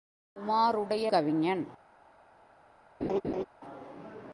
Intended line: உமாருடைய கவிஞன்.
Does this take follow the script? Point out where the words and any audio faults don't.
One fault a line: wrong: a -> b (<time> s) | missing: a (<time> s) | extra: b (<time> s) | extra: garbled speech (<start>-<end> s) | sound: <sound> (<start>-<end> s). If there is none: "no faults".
sound: laugh (3.0-3.4 s)